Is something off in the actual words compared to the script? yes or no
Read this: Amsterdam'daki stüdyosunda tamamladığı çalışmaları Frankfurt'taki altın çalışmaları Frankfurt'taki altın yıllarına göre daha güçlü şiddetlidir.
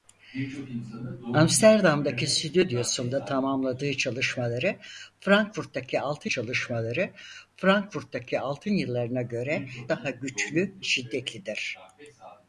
no